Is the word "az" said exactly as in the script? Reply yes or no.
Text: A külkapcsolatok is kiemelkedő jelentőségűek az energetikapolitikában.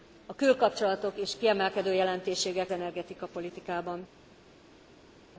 no